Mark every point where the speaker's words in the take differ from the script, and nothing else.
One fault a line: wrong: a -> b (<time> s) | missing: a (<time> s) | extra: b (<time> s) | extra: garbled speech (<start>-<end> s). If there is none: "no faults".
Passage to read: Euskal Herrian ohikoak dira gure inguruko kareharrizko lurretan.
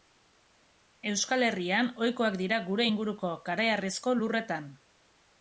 no faults